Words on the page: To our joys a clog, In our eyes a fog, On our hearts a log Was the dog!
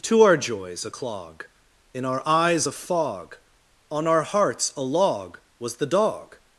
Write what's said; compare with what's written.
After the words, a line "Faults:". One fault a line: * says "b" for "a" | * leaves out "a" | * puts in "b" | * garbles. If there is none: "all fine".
To our joys a clog, In our eyes a fog, On our hearts a log Was the dog!
Faults:
all fine